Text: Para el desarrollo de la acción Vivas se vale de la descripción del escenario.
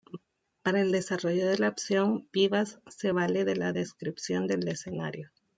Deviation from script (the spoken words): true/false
false